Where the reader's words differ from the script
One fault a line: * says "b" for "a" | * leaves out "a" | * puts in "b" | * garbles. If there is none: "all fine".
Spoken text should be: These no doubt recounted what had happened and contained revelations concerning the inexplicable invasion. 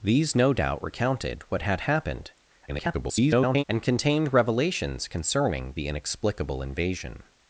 * garbles